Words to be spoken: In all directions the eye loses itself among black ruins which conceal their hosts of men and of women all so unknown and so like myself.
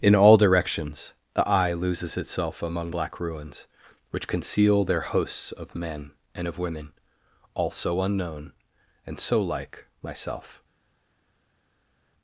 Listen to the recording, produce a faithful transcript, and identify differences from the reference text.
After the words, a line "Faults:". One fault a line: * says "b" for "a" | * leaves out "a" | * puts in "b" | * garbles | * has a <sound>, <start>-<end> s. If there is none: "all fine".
In all directions the eye loses itself among black ruins which conceal their hosts of men and of women all so unknown and so like myself.
Faults:
all fine